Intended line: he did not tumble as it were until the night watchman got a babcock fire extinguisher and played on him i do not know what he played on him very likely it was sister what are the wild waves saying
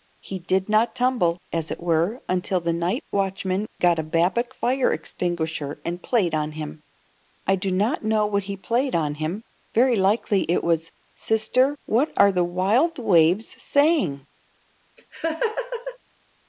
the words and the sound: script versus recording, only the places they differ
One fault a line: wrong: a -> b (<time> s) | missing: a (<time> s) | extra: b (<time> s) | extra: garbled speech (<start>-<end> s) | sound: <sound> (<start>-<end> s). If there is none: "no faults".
sound: laugh (15.0-16.0 s)